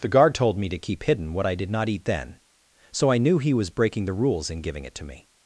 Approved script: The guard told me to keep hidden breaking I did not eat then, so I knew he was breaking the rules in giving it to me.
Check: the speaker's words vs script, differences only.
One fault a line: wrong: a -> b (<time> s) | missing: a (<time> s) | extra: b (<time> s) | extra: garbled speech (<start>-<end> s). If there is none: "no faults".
wrong: breaking -> what (1.3 s)